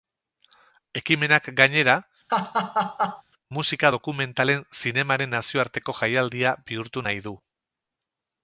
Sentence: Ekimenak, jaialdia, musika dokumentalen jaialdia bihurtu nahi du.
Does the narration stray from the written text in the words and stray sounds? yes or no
yes